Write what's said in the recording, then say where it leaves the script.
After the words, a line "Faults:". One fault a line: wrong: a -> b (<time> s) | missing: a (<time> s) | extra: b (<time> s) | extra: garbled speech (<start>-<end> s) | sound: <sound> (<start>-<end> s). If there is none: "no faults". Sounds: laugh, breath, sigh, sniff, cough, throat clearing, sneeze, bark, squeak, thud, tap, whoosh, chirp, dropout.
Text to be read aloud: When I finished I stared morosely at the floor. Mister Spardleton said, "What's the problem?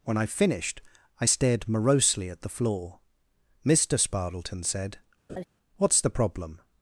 When I finished I stared morosely at the floor. Mister Spardleton said, "What's the problem?
Faults:
sound: laugh (5.3-5.4 s)